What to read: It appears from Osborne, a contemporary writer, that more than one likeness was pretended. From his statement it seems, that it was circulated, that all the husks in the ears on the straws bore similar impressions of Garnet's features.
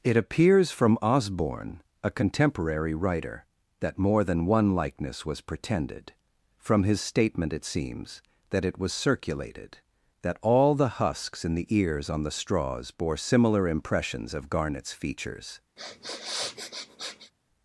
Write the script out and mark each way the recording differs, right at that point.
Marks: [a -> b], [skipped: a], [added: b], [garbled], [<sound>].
It appears from Osborne, a contemporary writer, that more than one likeness was pretended. From his statement it seems, that it was circulated, that all the husks in the ears on the straws bore similar impressions of Garnet's features. [sniff]